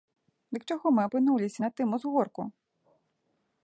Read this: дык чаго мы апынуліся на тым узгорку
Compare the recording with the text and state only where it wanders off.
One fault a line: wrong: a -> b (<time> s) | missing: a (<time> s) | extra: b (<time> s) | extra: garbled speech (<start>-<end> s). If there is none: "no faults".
no faults